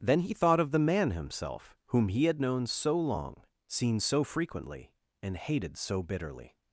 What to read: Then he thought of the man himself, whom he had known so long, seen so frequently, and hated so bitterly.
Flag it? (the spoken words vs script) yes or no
no